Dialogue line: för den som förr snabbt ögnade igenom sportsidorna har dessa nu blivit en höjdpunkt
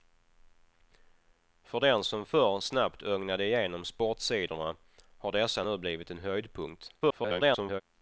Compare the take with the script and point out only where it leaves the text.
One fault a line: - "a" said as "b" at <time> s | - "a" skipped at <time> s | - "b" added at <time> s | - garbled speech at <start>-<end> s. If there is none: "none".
- garbled speech at 7.0-7.8 s